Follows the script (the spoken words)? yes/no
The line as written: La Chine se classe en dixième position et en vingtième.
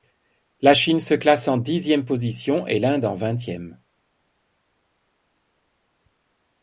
no